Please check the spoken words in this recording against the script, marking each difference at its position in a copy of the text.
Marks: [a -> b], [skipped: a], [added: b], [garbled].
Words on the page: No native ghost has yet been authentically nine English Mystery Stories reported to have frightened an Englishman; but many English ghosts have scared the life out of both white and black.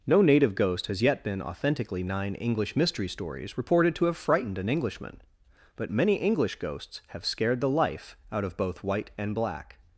No native ghost has yet been authentically nine English Mystery Stories reported to have frightened an Englishman; but many English ghosts have scared the life out of both white and black.